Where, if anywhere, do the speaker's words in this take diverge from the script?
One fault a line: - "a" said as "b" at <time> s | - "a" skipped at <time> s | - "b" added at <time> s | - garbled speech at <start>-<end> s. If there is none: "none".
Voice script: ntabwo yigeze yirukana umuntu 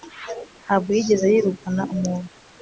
none